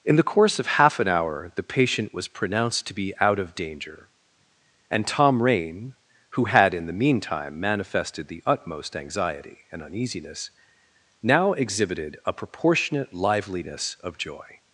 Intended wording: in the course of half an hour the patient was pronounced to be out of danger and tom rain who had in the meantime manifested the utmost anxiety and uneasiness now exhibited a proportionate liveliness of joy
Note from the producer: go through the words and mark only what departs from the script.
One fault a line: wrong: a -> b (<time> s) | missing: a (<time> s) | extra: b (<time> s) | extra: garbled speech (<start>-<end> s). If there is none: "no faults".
no faults